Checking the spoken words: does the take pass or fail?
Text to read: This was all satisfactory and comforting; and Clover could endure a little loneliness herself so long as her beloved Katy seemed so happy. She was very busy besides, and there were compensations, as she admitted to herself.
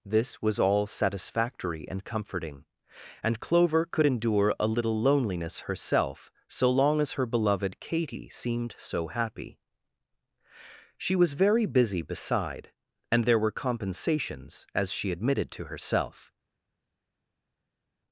fail